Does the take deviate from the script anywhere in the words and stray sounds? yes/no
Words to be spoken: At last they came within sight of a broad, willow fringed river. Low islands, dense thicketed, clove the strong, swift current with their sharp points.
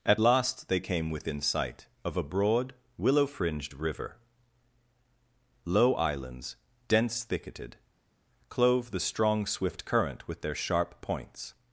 no